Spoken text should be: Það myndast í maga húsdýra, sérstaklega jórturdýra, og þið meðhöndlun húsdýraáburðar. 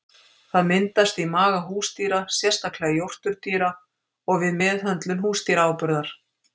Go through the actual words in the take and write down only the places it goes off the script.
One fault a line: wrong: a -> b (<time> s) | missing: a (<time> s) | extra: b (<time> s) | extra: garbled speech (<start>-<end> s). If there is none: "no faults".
wrong: þið -> við (4.5 s)